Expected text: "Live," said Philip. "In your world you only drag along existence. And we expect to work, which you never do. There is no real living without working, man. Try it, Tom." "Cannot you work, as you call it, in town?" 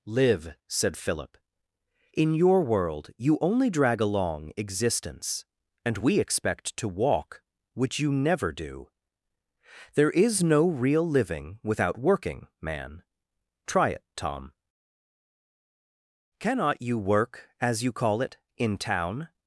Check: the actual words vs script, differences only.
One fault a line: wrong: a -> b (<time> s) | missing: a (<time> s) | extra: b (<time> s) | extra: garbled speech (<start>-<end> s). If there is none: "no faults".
wrong: work -> walk (6.9 s)